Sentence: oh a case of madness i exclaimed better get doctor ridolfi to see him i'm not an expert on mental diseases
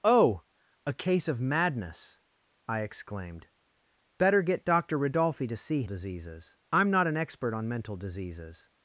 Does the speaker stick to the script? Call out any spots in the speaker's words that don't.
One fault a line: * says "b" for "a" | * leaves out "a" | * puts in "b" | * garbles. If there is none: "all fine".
* says "diseases" for "him"